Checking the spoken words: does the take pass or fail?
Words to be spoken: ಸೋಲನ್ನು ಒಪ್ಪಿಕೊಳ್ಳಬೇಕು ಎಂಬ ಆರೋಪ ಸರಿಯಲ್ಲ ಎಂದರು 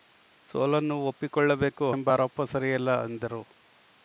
pass